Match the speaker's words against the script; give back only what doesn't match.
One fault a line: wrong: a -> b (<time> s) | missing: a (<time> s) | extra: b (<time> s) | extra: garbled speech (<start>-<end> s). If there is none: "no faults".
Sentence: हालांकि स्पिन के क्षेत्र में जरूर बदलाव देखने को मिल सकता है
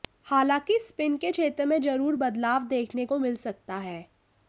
no faults